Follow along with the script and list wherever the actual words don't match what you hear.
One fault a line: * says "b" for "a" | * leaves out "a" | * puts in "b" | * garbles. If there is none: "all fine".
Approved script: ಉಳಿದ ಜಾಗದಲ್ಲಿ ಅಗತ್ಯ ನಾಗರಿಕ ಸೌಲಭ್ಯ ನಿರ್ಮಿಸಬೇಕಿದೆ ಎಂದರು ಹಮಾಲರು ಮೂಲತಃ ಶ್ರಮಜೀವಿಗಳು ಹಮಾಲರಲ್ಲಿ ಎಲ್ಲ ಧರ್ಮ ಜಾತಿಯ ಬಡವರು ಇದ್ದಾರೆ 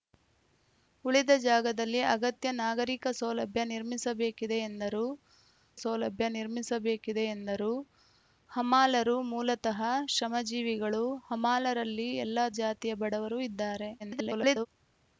* puts in "ಸೌಲಭ್ಯ ನಿರ್ಮಿಸಬೇಕಿದೆ ಎಂದರು"
* leaves out "ಧರ್ಮ"
* garbles